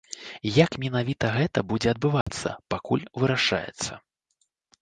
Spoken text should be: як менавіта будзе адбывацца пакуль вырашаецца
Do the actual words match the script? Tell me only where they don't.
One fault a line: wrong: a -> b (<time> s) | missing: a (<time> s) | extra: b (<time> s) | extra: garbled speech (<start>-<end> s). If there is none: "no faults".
extra: гэта (1.4 s)